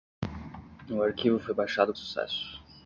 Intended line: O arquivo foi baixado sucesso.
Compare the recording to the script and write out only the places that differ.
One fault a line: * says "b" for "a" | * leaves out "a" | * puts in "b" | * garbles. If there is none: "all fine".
all fine